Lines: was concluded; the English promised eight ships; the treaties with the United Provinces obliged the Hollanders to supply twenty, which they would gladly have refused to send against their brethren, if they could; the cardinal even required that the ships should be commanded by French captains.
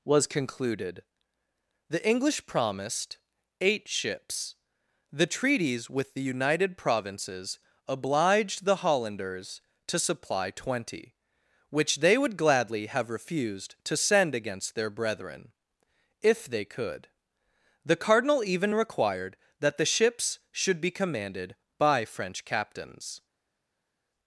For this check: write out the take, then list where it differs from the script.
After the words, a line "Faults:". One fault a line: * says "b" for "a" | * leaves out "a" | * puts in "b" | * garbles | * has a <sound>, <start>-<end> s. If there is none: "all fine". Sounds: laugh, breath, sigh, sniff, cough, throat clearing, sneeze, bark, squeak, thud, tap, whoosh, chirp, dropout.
was concluded; the English promised eight ships; the treaties with the United Provinces obliged the Hollanders to supply twenty, which they would gladly have refused to send against their brethren, if they could; the cardinal even required that the ships should be commanded by French captains.
Faults:
all fine